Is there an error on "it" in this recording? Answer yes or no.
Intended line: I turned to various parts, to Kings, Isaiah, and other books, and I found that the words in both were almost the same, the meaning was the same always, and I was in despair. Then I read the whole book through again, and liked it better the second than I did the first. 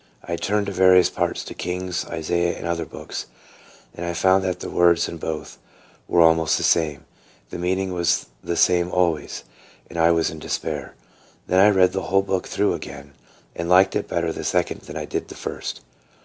no